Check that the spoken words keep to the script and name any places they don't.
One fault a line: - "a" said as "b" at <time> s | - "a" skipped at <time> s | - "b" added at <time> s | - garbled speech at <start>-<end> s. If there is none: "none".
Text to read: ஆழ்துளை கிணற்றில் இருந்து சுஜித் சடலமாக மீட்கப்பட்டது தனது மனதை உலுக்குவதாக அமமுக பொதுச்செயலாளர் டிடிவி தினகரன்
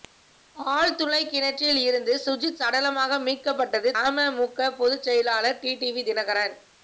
- "தனது மனதை உலுக்குவதாக" skipped at 3.9 s